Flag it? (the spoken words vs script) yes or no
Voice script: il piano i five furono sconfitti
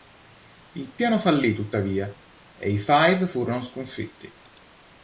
yes